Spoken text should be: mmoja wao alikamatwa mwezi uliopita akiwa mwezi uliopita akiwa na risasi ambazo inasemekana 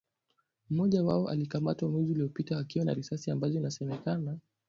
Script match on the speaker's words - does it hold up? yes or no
no